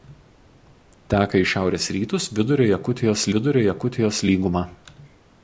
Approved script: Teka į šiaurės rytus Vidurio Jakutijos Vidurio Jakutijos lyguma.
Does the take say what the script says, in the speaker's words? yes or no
yes